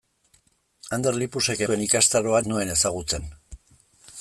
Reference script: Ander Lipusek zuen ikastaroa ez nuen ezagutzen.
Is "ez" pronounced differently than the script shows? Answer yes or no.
no